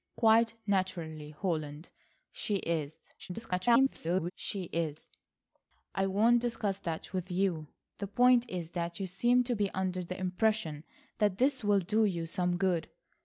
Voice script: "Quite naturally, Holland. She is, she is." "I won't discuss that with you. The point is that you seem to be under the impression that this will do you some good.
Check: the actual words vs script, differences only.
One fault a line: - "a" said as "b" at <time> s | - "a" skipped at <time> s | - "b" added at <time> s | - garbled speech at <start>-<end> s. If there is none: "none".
- garbled speech at 3.2-4.3 s